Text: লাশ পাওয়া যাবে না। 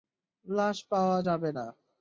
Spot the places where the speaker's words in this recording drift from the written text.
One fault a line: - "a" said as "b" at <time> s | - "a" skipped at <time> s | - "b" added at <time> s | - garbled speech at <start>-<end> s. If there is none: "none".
none